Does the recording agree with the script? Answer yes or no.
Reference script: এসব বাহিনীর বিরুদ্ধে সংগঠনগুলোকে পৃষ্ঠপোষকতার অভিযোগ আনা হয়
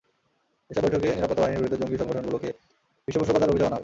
no